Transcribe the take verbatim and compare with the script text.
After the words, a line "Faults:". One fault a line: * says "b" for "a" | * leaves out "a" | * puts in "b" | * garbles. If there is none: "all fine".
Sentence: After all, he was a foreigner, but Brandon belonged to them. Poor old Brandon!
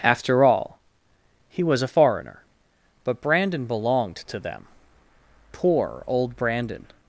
After all, he was a foreigner, but Brandon belonged to them. Poor old Brandon!
Faults:
all fine